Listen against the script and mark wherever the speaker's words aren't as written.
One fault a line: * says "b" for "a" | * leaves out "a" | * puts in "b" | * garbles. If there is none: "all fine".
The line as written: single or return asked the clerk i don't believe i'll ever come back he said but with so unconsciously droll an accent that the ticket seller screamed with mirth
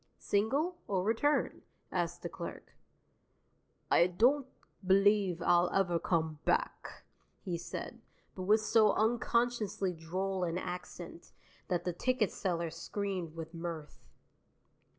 all fine